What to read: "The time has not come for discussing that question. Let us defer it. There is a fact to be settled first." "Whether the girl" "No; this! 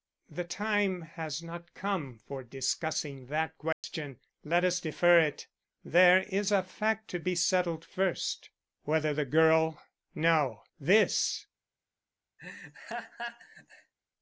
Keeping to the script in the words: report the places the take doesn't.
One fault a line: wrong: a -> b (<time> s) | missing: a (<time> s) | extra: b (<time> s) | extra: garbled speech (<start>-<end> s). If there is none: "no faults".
no faults